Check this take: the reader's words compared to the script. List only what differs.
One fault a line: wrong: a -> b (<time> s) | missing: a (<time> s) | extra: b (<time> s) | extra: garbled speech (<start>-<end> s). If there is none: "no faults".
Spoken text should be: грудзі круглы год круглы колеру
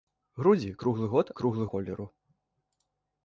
no faults